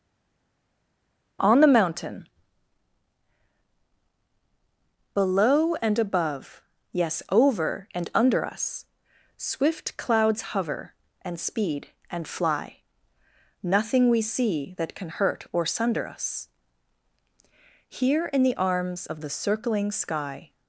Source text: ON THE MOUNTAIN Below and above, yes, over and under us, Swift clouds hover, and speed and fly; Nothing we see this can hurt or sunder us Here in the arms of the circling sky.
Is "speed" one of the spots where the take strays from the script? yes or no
no